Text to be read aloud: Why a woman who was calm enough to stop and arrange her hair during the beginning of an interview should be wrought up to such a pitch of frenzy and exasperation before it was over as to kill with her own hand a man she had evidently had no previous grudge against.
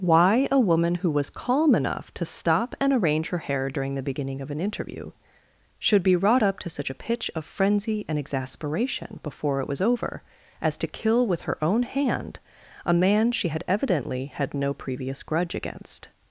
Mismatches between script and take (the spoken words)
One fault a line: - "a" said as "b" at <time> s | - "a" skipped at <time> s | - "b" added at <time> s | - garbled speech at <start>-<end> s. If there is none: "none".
none